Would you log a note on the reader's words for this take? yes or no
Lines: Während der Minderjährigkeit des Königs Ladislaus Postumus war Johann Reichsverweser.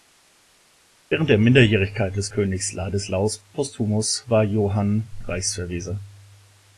no